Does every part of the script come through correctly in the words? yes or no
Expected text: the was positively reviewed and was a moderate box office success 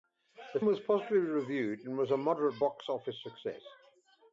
yes